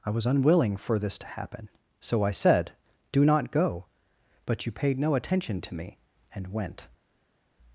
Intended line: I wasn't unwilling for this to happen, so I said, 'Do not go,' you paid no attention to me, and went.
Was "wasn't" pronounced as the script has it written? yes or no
no